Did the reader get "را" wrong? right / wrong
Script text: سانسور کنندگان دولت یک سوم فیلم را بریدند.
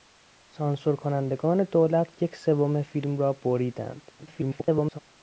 right